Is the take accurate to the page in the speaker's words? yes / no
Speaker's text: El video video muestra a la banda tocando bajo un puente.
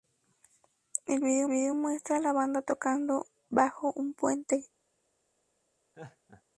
yes